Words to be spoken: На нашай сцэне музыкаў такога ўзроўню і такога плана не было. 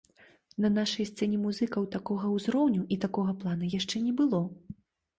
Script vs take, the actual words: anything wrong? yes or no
yes